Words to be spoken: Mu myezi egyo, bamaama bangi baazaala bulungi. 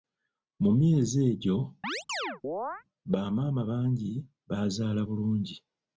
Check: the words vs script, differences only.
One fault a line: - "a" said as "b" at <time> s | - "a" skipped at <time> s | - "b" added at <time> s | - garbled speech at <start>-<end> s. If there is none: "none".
none